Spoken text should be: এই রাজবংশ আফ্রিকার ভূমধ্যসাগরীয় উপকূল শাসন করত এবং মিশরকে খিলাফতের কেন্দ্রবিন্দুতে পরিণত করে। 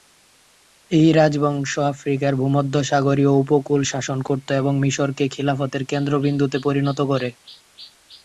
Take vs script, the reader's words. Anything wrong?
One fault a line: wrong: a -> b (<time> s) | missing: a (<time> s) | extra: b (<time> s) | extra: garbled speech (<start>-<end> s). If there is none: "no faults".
no faults